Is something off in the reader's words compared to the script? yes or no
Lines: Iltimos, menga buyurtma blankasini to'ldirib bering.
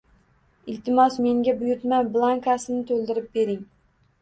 no